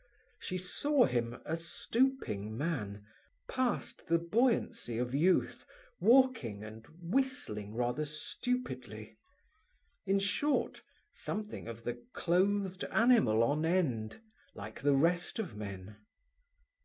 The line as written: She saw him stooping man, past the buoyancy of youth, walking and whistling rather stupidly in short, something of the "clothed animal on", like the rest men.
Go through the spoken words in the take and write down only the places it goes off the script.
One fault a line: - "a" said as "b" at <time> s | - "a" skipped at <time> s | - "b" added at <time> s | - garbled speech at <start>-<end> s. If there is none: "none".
- "a" added at 1.4 s
- "end" added at 13.7 s
- "of" added at 15.4 s